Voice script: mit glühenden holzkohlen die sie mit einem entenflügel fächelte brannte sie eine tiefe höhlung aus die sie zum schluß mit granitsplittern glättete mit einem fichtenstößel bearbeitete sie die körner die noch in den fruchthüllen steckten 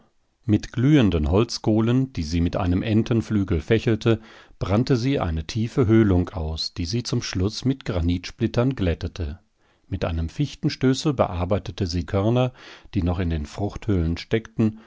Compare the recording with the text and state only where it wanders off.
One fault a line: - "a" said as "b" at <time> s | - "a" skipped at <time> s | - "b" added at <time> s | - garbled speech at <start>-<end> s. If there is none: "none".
- "die" skipped at 12.1 s